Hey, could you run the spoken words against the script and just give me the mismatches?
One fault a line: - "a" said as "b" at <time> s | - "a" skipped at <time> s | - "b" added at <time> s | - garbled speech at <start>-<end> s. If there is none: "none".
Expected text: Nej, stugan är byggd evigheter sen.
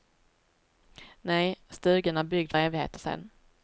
none